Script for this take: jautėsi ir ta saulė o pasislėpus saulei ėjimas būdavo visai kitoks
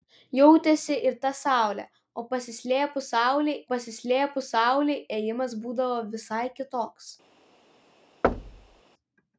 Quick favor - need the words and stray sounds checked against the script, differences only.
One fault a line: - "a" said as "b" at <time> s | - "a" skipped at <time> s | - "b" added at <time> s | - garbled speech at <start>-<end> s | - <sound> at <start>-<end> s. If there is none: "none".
- "pasislėpus saulei" added at 3.7 s
- thud at 8.2-8.8 s